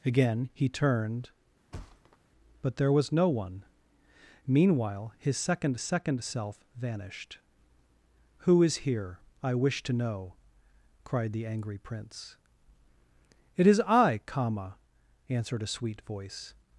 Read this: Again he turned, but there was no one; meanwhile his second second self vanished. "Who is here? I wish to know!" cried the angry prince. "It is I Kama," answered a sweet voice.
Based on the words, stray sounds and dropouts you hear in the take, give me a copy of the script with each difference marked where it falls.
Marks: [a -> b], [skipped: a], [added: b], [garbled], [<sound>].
Again he turned, [thud] but there was no one; meanwhile his second second self vanished. "Who is here? I wish to know!" cried the angry prince. "It is I Kama," answered a sweet voice.